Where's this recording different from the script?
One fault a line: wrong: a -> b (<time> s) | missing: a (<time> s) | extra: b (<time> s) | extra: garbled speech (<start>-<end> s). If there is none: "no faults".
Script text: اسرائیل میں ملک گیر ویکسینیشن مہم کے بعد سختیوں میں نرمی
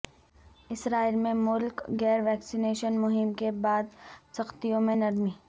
no faults